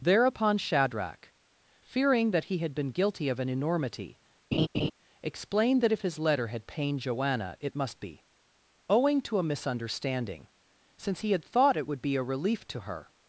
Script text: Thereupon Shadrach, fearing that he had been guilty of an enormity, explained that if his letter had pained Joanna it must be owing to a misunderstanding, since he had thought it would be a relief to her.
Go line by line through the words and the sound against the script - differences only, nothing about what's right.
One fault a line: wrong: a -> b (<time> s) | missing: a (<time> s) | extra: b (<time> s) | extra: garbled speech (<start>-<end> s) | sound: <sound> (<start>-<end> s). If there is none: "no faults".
sound: laugh (4.5-4.9 s)